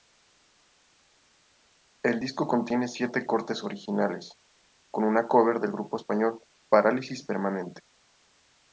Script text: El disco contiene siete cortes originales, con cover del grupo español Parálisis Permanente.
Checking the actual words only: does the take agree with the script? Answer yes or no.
no